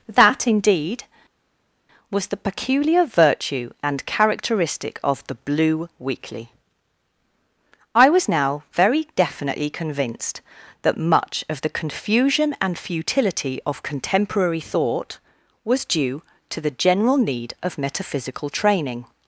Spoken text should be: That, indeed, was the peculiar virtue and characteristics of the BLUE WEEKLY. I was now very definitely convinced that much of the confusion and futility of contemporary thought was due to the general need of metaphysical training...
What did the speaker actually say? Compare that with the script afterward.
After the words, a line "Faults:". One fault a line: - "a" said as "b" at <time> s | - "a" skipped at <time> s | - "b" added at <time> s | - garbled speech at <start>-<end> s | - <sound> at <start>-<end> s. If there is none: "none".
That, indeed, was the peculiar virtue and characteristic of the BLUE WEEKLY. I was now very definitely convinced that much of the confusion and futility of contemporary thought was due to the general need of metaphysical training...
Faults:
- "characteristics" said as "characteristic" at 4.1 s